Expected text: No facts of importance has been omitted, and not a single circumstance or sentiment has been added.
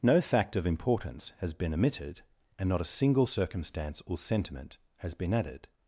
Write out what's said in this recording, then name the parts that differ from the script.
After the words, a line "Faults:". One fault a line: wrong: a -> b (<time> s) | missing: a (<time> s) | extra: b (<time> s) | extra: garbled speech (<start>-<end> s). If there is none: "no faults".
No fact of importance has been omitted, and not a single circumstance or sentiment has been added.
Faults:
wrong: facts -> fact (0.2 s)